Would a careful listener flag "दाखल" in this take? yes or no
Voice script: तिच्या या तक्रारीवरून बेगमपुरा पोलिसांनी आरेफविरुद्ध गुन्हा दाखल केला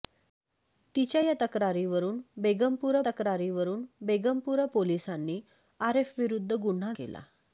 yes